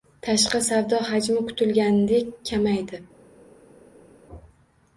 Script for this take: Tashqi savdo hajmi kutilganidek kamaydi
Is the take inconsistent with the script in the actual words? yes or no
no